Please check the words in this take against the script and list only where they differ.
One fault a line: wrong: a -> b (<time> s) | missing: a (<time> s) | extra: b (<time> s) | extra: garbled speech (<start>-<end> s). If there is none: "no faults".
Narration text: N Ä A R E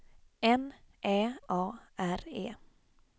no faults